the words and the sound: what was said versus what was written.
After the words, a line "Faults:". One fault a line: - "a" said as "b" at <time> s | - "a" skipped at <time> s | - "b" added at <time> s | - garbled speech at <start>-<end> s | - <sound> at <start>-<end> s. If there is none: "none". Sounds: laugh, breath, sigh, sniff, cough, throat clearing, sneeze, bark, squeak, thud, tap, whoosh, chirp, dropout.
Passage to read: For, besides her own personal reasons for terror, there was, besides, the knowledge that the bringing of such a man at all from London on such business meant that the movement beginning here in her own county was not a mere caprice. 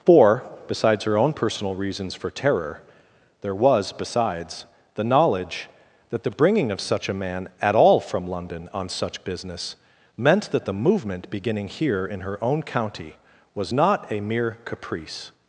For, besides her own personal reasons for terror, there was, besides, the knowledge that the bringing of such a man at all from London on such business meant that the movement beginning here in her own county was not a mere caprice.
Faults:
none